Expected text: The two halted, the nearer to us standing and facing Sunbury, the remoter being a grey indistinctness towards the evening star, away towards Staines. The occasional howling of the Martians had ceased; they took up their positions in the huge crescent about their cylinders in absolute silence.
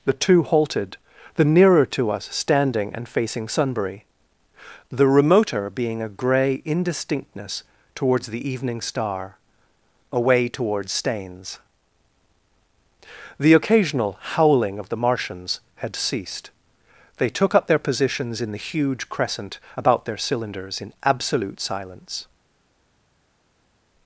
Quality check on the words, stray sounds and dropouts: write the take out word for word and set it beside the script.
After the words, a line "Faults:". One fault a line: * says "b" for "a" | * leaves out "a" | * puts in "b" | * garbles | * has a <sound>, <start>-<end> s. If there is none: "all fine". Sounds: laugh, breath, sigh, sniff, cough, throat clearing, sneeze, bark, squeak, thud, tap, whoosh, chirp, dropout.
The two halted, the nearer to us standing and facing Sunbury, the remoter being a grey indistinctness towards the evening star, away towards Staines. The occasional howling of the Martians had ceased; they took up their positions in the huge crescent about their cylinders in absolute silence.
Faults:
all fine